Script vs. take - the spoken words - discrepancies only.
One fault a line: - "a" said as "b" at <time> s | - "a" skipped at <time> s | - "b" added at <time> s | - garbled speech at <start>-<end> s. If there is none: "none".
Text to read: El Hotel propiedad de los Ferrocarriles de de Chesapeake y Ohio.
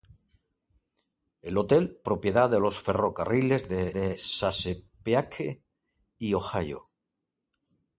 none